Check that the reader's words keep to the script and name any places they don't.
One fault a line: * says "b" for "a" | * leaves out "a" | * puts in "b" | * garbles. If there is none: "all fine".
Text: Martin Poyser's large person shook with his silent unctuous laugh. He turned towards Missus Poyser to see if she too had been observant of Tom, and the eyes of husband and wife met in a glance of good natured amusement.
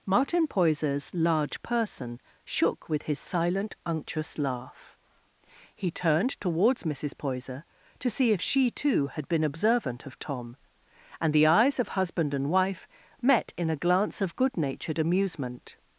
all fine